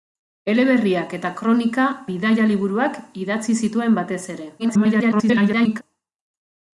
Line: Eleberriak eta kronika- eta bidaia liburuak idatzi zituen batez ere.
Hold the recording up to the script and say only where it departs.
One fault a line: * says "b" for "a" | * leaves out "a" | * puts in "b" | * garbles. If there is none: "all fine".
* leaves out "eta"
* garbles